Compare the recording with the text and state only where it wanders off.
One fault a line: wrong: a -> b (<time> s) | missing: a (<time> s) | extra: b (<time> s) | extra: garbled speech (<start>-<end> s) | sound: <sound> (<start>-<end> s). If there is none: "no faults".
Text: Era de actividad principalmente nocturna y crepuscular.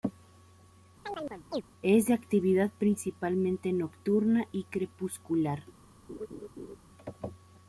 sound: chirp (1.0-1.6 s)
wrong: Era -> Es (1.8 s)
sound: laugh (6.1-6.8 s)